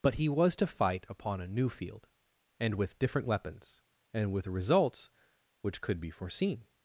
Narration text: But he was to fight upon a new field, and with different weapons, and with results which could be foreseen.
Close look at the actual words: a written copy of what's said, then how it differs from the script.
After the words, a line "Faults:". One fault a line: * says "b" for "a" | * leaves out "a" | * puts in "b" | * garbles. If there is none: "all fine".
But he was to fight upon a new field, and with different weapons, and with results which could be foreseen.
Faults:
all fine